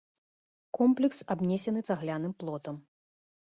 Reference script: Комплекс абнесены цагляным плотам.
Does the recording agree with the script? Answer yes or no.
yes